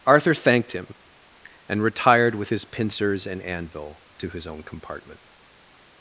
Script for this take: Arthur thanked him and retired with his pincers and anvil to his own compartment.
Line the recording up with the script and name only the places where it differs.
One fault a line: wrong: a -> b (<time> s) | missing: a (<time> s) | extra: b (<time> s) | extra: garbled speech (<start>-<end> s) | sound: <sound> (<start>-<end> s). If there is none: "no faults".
no faults